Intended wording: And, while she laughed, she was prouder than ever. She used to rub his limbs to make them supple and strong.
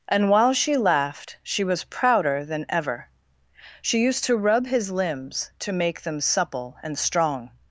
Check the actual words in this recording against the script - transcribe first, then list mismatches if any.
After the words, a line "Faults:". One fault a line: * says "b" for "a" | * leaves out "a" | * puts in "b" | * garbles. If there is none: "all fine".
And, while she laughed, she was prouder than ever. She used to rub his limbs to make them supple and strong.
Faults:
all fine